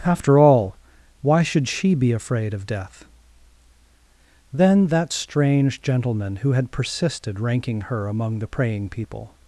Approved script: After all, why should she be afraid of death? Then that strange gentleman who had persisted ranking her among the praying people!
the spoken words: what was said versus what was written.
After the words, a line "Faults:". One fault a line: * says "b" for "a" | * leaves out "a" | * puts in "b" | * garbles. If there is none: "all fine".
After all, why should she be afraid of death? Then that strange gentleman who had persisted ranking her among the praying people!
Faults:
all fine